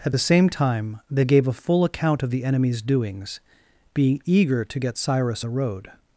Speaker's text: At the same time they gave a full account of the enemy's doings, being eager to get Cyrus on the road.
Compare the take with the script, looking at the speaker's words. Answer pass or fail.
fail